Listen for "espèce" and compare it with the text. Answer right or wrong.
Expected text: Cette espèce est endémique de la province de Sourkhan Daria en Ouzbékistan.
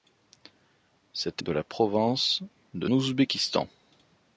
wrong